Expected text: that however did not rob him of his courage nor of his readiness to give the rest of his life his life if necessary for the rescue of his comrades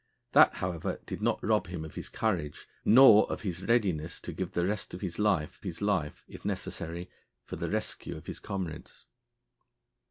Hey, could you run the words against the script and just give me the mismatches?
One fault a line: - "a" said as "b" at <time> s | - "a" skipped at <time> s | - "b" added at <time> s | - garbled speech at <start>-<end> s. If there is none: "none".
none